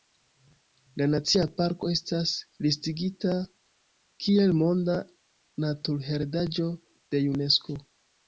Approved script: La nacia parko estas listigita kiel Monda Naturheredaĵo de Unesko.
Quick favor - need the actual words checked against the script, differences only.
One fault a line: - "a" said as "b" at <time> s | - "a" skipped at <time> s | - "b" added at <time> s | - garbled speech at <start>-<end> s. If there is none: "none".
none